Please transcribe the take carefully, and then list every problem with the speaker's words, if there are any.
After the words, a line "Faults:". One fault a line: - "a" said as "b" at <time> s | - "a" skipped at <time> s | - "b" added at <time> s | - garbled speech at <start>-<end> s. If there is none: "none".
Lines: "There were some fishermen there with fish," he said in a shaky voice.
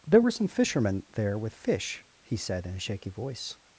"There were some fishermen there with fish," he said in a shaky voice.
Faults:
none